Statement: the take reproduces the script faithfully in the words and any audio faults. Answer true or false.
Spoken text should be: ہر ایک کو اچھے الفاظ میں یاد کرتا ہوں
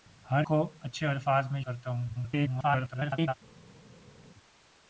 false